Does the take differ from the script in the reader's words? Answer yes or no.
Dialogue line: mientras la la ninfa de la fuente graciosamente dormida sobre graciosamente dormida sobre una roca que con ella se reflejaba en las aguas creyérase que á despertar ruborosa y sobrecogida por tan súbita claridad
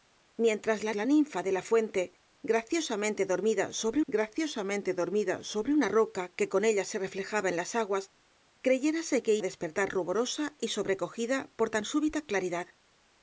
no